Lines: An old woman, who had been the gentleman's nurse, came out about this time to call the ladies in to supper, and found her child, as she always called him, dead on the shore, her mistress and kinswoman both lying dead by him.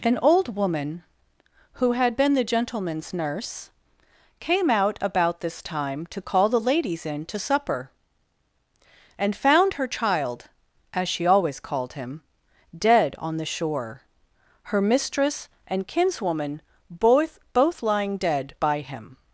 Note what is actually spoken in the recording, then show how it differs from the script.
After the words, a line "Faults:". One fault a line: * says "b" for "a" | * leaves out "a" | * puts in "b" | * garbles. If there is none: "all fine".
An old woman, who had been the gentleman's nurse, came out about this time to call the ladies in to supper, and found her child, as she always called him, dead on the shore, her mistress and kinswoman both both lying dead by him.
Faults:
* puts in "both"